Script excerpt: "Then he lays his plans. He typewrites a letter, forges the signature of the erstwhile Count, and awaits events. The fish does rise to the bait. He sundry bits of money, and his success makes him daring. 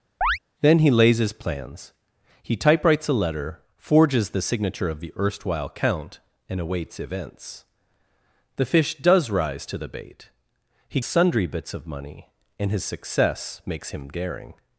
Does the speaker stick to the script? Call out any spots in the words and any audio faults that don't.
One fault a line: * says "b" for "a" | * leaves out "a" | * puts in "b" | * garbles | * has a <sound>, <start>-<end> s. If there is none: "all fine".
* has a chirp, 0.2-0.4 s